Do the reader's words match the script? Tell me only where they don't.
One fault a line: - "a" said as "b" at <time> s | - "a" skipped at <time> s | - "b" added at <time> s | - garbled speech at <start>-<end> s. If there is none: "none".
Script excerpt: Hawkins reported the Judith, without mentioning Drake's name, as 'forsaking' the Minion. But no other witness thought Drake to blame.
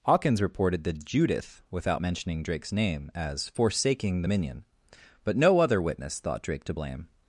none